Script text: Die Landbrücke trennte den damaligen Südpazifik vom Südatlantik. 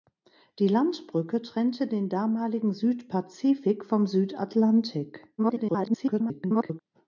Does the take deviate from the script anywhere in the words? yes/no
yes